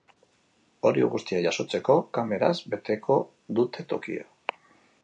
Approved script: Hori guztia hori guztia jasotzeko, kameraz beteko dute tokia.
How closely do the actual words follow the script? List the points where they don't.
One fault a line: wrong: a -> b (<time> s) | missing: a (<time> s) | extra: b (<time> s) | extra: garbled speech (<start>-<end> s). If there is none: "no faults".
missing: hori guztia (1.4 s)